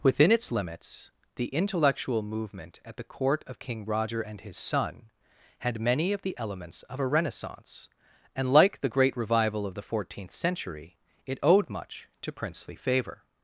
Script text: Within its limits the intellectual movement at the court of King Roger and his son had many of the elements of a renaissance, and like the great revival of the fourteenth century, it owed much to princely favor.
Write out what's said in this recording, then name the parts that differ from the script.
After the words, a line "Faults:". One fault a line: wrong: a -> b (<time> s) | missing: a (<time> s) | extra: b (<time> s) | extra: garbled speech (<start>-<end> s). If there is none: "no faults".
Within its limits the intellectual movement at the court of King Roger and his son had many of the elements of a renaissance, and like the great revival of the fourteenth century, it owed much to princely favor.
Faults:
no faults